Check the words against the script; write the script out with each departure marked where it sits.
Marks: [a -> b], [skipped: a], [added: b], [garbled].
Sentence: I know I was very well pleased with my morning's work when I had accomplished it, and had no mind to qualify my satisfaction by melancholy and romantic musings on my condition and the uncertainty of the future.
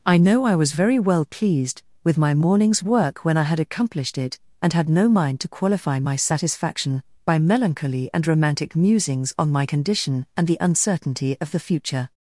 I know I was very well pleased with my morning's work when I had accomplished it, and had no mind to qualify my satisfaction by melancholy and romantic musings on my condition and the uncertainty of the future.